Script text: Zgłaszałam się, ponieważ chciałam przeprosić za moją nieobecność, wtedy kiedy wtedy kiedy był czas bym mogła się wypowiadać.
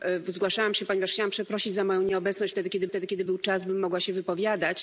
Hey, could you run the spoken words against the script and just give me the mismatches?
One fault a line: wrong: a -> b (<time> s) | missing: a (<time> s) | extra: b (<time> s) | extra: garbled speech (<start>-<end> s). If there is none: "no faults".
no faults